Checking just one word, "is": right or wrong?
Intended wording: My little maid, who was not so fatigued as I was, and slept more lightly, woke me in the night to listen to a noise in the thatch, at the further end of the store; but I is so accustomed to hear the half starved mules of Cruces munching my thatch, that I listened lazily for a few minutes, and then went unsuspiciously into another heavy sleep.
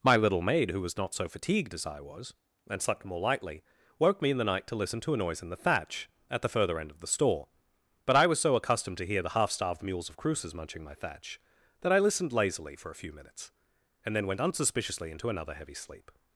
wrong